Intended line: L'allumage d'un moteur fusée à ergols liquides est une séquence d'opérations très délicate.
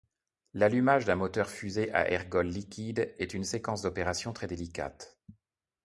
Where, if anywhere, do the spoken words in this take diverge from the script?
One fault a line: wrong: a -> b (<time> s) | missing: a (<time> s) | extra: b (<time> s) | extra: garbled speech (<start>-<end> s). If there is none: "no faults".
no faults